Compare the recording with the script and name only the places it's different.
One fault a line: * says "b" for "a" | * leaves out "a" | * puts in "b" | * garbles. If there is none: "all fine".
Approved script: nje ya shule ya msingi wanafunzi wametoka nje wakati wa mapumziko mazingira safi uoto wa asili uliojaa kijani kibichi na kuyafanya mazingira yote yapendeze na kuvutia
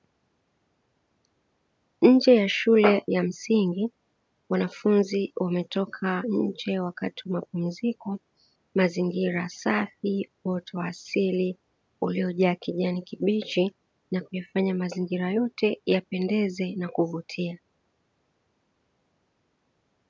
all fine